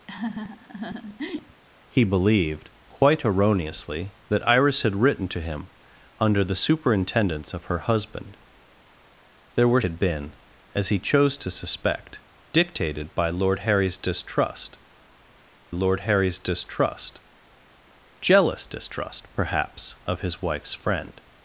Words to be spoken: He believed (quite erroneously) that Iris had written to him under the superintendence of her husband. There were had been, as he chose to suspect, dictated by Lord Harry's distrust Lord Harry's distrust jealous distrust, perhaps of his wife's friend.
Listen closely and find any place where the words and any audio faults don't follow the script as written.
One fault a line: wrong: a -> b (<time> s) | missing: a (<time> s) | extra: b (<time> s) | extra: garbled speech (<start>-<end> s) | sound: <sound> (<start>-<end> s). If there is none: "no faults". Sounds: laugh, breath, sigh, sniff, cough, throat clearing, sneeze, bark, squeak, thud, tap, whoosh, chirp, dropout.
sound: laugh (0.1-1.6 s)